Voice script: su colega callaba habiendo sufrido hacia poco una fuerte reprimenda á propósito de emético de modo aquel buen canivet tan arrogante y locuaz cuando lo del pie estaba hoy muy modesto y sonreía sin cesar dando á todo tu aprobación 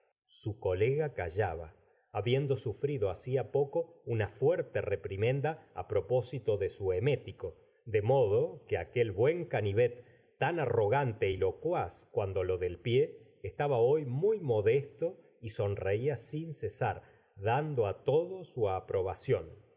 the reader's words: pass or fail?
fail